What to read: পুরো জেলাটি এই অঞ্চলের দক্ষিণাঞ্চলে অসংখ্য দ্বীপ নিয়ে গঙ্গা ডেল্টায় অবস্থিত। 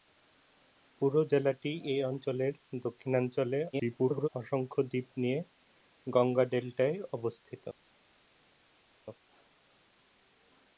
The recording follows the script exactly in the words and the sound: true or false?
false